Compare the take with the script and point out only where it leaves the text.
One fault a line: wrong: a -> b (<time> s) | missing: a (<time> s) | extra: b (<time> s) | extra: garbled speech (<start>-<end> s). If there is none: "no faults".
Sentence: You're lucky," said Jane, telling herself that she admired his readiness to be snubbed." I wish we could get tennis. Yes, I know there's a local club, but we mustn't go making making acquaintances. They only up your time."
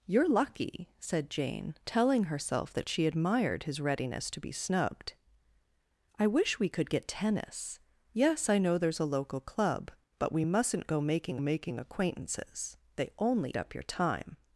no faults